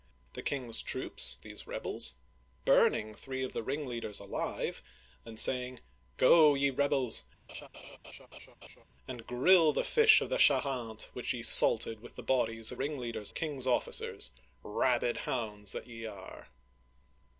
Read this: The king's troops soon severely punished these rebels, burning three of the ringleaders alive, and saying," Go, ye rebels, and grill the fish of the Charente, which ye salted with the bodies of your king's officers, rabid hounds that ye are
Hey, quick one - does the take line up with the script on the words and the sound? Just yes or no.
no